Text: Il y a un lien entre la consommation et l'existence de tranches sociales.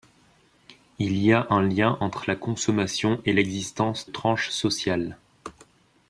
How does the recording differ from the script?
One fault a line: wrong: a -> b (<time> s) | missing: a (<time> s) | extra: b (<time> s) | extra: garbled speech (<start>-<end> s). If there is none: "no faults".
missing: de (4.1 s)